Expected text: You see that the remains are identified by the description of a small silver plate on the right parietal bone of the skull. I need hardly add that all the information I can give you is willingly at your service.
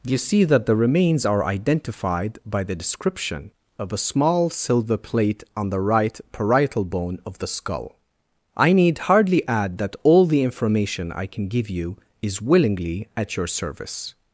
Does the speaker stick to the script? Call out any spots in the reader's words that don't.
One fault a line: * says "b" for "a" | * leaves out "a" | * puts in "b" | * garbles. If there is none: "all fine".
all fine